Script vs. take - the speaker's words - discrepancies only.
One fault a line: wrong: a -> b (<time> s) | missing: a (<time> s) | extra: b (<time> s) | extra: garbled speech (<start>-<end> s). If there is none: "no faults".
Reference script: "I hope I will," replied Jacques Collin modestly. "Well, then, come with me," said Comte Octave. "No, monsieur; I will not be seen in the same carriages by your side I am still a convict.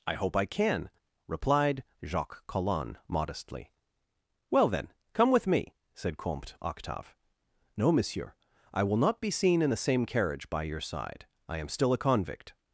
wrong: will -> can (0.5 s)
wrong: carriages -> carriage (10.0 s)